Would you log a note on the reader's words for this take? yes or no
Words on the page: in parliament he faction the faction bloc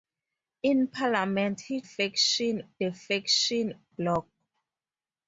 no